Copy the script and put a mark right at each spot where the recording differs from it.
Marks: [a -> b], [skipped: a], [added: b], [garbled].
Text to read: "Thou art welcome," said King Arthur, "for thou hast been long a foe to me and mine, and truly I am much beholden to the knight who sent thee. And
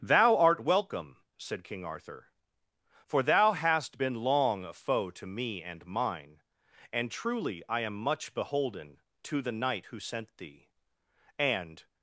"Thou art welcome," said King Arthur, "for thou hast been long a foe to me and mine, and truly I am much beholden to the knight who sent thee. And